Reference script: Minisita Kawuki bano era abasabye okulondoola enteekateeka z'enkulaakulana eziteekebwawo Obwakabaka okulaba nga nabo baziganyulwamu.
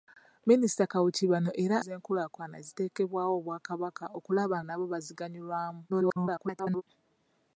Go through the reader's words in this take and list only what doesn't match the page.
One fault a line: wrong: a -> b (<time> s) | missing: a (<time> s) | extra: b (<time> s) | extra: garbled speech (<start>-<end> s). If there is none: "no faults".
missing: abasabye okulondoola enteekateeka (1.8 s)
missing: nga (4.6 s)
extra: garbled speech (5.9-6.8 s)